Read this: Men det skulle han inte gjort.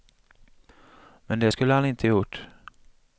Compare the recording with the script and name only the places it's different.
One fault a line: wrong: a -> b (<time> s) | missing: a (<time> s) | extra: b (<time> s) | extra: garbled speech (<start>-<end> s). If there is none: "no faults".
no faults